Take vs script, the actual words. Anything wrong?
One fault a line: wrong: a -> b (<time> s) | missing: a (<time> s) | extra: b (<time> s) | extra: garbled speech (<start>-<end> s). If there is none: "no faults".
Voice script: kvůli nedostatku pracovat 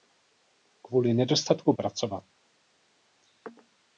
no faults